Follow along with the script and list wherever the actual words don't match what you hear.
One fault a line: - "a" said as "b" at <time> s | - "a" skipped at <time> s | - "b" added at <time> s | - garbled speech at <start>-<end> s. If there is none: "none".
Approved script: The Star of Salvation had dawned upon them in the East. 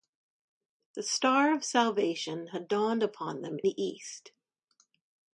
- "in" skipped at 3.6 s